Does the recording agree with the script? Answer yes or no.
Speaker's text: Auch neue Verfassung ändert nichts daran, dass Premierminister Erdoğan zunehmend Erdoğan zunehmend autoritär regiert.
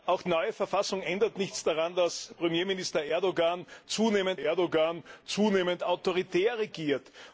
yes